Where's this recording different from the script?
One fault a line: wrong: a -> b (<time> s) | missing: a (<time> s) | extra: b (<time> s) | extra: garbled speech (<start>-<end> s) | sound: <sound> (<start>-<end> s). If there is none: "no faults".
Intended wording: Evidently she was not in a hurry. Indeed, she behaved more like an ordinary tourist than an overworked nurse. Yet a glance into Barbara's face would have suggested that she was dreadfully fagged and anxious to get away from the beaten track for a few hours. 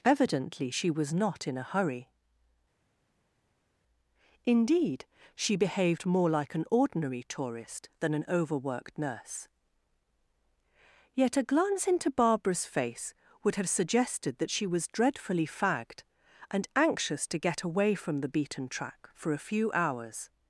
no faults